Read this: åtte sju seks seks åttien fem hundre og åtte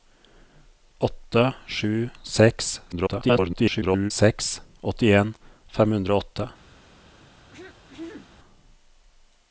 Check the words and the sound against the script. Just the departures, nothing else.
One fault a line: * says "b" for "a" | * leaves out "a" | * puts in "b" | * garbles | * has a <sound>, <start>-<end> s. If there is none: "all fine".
* garbles
* has a throat clearing, 7.5-8.3 s